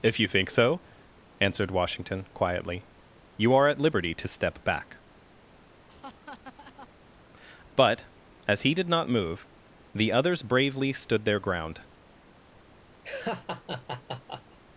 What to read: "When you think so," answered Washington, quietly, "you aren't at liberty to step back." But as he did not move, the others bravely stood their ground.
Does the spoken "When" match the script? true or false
false